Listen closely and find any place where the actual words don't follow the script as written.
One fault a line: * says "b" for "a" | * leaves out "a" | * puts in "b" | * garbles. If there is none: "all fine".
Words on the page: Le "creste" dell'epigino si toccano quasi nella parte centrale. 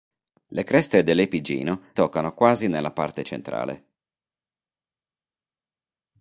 * leaves out "si"